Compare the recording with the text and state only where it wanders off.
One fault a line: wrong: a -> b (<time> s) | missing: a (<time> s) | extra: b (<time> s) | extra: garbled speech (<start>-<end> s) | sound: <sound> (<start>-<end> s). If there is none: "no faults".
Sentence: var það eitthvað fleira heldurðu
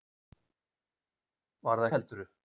missing: eitthvað fleira (1.9 s)